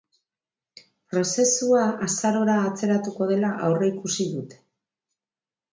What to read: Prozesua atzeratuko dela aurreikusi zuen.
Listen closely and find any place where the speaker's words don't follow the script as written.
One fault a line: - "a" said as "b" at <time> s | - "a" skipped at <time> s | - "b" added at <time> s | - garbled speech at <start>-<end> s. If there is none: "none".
- "azarora" added at 2.1 s
- "zuen" said as "dute" at 4.4 s